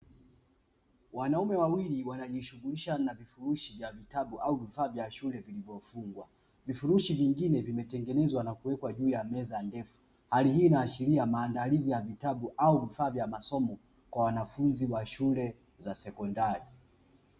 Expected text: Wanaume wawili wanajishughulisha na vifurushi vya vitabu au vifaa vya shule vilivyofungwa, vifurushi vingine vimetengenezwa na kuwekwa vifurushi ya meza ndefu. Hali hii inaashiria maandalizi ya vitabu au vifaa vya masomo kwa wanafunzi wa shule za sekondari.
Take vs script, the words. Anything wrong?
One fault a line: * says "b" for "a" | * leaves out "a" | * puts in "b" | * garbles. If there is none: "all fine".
* says "juu" for "vifurushi"